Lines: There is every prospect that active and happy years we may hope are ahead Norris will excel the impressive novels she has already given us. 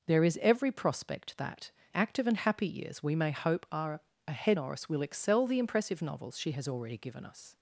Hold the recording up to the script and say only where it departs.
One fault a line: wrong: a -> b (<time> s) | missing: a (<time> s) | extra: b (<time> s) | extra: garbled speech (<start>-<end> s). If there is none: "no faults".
no faults